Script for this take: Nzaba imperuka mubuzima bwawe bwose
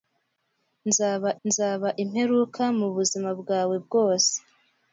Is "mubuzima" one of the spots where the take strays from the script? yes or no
no